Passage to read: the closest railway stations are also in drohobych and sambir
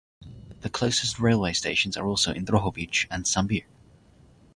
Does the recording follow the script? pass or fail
pass